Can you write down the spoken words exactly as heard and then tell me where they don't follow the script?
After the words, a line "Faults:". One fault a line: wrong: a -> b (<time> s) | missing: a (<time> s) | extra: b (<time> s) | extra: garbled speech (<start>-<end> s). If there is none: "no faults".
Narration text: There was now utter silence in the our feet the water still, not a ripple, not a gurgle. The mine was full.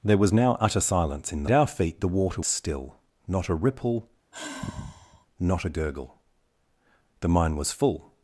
There was now utter silence in the our feet the water still, not a ripple, not a gurgle. The mine was full.
Faults:
no faults